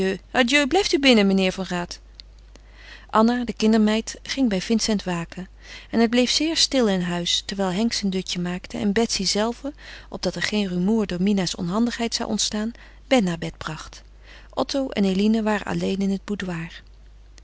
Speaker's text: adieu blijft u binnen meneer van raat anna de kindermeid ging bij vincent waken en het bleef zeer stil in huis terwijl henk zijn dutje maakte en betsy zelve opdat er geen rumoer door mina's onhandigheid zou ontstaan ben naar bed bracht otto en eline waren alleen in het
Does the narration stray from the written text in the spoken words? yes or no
no